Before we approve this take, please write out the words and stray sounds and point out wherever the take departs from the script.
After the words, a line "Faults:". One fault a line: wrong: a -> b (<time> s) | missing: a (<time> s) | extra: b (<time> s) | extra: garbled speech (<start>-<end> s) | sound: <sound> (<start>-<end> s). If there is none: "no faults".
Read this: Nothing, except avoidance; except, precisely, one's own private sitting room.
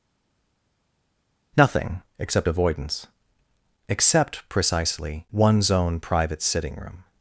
Nothing, except avoidance; except, precisely, one's own private sitting room.
Faults:
no faults